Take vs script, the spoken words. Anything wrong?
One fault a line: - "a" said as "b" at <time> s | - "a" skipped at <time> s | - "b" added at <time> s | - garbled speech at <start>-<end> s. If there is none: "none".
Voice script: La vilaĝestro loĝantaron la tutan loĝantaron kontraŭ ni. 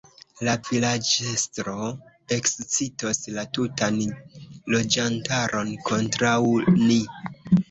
- "loĝantaron" said as "ekscitos" at 2.4 s